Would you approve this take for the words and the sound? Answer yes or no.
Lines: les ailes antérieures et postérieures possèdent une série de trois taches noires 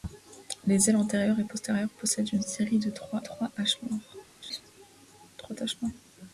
no